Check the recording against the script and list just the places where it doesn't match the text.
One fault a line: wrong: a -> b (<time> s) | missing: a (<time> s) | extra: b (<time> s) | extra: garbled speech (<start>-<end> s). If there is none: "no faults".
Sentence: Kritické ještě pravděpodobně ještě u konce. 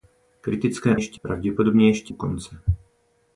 no faults